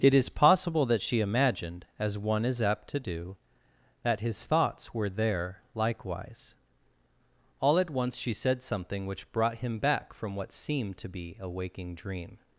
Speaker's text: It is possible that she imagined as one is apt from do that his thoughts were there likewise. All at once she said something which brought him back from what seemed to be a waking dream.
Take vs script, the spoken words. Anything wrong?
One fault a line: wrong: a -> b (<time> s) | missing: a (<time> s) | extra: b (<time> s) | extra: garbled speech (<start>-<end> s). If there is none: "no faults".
wrong: from -> to (2.9 s)